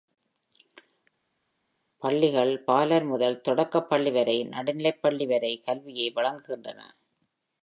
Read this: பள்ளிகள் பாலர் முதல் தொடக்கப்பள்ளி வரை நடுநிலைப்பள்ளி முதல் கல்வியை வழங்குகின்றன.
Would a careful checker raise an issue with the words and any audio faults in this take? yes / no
yes